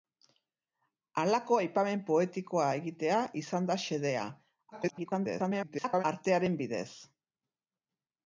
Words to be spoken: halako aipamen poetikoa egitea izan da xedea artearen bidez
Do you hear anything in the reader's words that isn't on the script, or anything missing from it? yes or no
yes